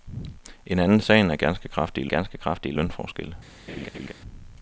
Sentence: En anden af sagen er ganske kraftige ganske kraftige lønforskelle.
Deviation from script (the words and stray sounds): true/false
true